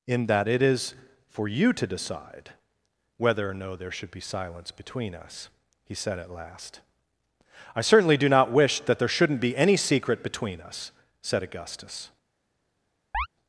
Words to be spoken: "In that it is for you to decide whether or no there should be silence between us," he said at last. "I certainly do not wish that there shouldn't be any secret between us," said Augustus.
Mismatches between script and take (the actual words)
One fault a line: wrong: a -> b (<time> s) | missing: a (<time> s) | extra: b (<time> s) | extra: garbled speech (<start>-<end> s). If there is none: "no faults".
no faults